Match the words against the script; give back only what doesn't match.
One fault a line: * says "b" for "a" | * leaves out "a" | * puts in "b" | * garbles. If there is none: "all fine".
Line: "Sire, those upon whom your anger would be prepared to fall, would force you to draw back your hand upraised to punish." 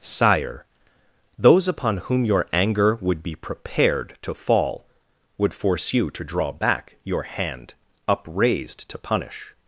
all fine